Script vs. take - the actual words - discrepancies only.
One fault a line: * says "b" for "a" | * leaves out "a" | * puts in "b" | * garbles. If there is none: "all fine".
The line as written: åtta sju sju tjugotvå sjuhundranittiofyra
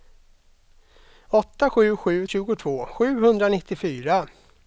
all fine